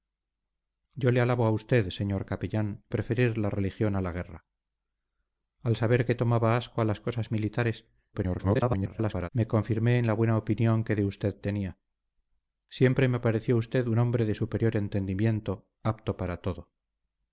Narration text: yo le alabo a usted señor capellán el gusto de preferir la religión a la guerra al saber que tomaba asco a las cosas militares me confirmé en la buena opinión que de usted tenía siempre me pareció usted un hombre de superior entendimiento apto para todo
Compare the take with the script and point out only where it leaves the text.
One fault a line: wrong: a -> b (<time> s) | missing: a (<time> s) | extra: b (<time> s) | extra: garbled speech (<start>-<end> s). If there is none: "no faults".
missing: el gusto de (2.8 s)
extra: garbled speech (8.1-9.3 s)